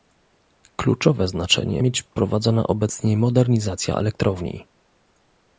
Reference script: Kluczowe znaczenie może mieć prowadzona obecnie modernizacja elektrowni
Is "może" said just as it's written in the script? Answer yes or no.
no